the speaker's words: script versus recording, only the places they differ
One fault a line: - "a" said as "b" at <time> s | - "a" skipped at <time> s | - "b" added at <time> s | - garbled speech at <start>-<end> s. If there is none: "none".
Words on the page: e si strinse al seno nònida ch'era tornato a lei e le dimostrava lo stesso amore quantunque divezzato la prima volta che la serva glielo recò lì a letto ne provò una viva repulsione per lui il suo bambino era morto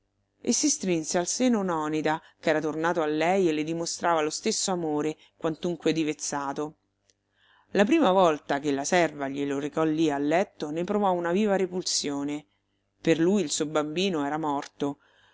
none